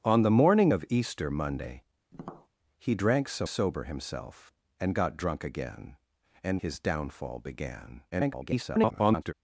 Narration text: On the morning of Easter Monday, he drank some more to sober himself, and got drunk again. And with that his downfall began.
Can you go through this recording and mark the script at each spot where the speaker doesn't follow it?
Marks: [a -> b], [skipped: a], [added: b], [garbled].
On the morning of Easter Monday, he drank some [skipped: more to] sober himself, and got drunk again. And [skipped: with that] his downfall began. [garbled]